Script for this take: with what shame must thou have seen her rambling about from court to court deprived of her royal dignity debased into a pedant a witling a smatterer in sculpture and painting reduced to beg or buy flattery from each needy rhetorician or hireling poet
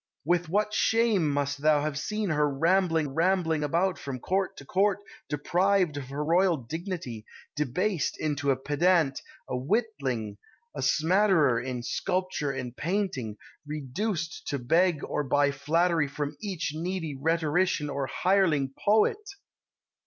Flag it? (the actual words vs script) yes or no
yes